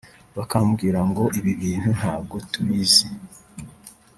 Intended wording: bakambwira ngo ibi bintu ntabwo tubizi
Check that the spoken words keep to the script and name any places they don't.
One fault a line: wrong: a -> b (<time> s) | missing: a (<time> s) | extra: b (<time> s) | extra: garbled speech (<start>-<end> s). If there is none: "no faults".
no faults